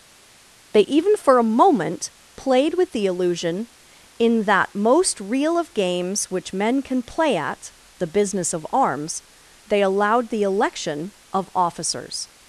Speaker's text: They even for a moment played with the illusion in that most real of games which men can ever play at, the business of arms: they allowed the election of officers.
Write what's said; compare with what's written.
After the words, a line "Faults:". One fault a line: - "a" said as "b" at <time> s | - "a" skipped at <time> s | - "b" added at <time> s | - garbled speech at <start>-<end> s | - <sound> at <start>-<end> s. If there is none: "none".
They even for a moment played with the illusion in that most real of games which men can play at, the business of arms: they allowed the election of officers.
Faults:
- "ever" skipped at 7.0 s